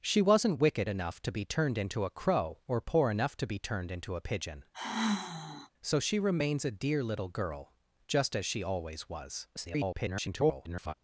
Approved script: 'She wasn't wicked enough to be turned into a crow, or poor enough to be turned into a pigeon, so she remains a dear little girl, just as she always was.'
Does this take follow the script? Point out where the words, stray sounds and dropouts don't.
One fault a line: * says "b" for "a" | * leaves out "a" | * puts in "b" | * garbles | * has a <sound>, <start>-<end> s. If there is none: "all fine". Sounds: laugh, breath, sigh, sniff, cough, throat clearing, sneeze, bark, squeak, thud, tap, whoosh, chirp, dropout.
* has a sigh, 4.7-5.7 s
* garbles